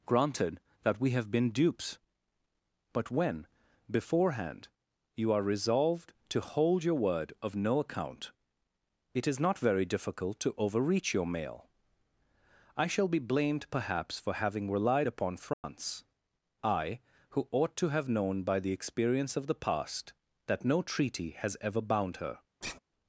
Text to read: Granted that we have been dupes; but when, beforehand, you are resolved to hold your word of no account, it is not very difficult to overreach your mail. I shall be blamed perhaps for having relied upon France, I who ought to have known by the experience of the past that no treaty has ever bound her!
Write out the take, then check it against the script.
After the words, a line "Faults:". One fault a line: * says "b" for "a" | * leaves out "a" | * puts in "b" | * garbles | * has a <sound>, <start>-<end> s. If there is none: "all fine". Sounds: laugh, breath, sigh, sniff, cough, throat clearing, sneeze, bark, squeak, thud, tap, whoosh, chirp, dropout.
Granted that we have been dupes; but when, beforehand, you are resolved to hold your word of no account, it is not very difficult to overreach your mail. I shall be blamed perhaps for having relied upon France, I who ought to have known by the experience of the past that no treaty has ever bound her!
Faults:
* has a dropout, 15.5-15.6 s
* has a sigh, 22.6-22.8 s